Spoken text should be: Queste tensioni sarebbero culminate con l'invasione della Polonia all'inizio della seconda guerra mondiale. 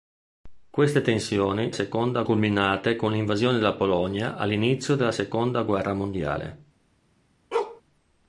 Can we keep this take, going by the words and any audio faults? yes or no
no